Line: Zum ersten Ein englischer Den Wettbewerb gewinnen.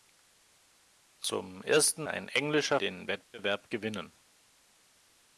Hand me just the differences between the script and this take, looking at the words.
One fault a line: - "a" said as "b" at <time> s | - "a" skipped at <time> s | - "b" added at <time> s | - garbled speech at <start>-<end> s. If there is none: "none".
none